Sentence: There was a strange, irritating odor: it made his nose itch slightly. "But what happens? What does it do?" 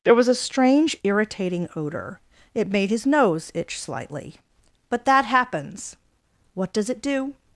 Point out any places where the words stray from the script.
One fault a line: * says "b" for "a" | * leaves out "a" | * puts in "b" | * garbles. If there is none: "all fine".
* says "that" for "what"